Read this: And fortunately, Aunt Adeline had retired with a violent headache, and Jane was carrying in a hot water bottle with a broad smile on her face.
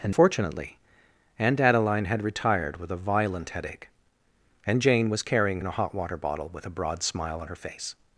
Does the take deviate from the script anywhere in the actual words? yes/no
no